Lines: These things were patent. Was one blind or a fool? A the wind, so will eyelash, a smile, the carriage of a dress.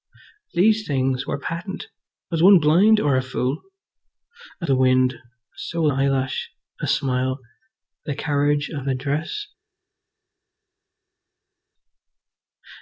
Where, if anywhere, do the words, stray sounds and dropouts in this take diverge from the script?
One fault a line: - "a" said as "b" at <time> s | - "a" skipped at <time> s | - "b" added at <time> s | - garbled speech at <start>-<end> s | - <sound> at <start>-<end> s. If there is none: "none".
none